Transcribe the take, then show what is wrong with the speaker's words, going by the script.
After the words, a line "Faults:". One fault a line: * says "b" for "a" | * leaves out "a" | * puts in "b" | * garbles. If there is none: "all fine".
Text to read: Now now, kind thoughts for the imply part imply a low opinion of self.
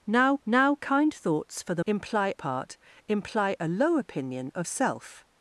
Now now, kind thoughts for the imply part imply a low opinion of self.
Faults:
all fine